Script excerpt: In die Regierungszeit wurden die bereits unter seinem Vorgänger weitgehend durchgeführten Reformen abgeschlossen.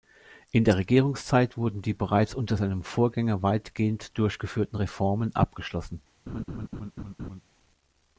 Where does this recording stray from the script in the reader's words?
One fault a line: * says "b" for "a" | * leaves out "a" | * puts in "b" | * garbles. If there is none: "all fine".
* says "der" for "die"